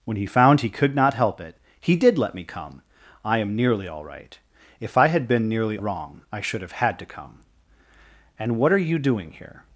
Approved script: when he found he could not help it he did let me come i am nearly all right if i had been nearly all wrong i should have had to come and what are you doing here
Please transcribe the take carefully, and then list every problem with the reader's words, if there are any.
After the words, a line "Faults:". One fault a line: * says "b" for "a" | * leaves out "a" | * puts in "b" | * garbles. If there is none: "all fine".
when he found he could not help it he did let me come i am nearly all right if i had been nearly wrong i should have had to come and what are you doing here
Faults:
* leaves out "all"